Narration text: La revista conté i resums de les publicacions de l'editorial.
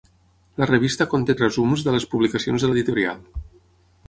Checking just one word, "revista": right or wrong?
right